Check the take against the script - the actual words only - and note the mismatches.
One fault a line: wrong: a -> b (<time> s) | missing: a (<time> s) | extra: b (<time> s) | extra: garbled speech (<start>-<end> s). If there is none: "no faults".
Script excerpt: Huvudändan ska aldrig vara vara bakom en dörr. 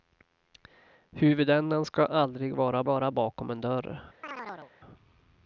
no faults